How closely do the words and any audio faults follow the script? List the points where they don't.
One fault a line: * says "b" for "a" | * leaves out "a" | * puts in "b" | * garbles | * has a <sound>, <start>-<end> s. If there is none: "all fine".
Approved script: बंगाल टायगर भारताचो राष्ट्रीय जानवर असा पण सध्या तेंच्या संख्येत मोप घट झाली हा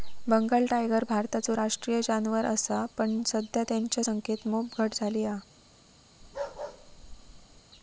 * has a bark, 6.2-7.6 s